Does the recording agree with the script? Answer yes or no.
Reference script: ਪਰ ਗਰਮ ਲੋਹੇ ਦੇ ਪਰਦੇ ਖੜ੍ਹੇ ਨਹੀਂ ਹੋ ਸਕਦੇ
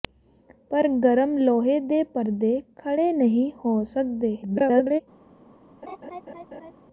no